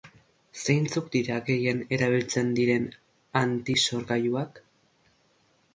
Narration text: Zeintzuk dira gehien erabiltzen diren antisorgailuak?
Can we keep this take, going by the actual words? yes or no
yes